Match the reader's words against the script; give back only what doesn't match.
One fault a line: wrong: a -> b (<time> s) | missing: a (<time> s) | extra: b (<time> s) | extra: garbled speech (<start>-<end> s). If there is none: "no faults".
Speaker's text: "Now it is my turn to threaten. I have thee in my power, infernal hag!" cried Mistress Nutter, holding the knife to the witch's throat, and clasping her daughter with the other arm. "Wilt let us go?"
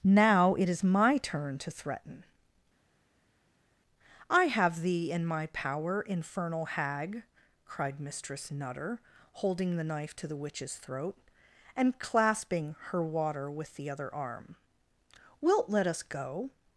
wrong: daughter -> water (13.0 s)